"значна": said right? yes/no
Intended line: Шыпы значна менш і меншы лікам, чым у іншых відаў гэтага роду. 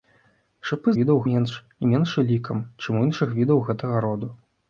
no